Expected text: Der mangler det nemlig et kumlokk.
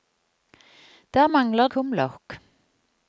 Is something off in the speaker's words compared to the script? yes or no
yes